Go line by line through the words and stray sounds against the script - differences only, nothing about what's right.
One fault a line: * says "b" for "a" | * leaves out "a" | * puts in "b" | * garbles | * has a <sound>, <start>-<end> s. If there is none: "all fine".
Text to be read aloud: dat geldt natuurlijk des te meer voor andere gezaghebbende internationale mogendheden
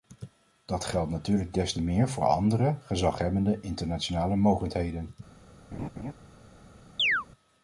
* has a laugh, 5.7-6.1 s
* has a chirp, 7.0-7.3 s